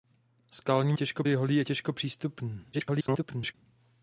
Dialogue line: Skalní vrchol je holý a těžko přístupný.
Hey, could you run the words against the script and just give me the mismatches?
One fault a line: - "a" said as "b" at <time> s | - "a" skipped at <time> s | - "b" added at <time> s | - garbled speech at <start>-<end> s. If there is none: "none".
- "vrchol" said as "těžko" at 0.9 s
- garbled speech at 2.7-3.5 s